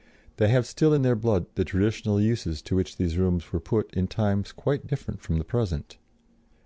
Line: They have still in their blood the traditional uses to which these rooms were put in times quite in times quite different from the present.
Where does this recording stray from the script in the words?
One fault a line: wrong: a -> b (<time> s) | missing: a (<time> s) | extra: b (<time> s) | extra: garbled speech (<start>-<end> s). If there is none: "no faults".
missing: in times quite (4.9 s)